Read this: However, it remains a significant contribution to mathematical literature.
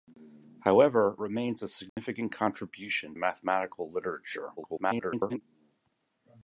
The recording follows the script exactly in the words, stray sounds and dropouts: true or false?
false